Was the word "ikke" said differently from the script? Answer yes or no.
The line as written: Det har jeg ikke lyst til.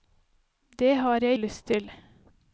yes